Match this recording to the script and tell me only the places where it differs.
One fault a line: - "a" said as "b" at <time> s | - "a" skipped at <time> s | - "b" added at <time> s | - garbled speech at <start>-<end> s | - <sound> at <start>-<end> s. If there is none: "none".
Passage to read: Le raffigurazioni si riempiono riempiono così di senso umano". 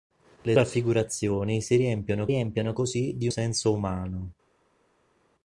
none